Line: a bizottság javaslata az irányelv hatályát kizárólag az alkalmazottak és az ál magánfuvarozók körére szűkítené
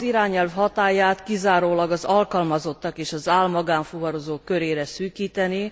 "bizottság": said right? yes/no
no